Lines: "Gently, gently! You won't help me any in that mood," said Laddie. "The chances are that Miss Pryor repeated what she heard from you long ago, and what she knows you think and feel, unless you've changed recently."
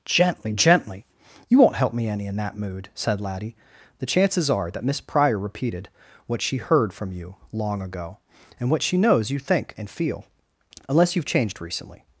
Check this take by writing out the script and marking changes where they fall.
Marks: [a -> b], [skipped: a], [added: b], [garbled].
"Gently, gently! You won't help me any in that mood," said Laddie. "The chances are that Miss Pryor repeated what she heard from you long ago, and what she knows you think and feel, unless you've changed recently."